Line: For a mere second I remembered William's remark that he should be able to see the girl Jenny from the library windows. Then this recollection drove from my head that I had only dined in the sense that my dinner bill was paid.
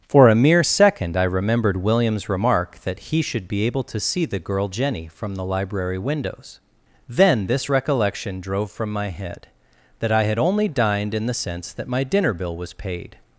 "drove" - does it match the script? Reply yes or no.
yes